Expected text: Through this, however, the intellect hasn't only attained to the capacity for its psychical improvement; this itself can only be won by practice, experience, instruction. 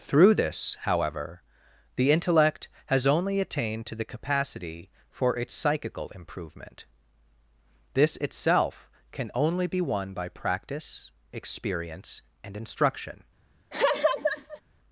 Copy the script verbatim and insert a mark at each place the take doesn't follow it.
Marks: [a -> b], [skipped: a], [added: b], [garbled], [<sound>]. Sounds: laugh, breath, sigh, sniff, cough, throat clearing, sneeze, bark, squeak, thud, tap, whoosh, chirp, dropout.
Through this, however, the intellect [hasn't -> has] only attained to the capacity for its psychical improvement; this itself can only be won by practice, experience, [added: and] instruction. [laugh]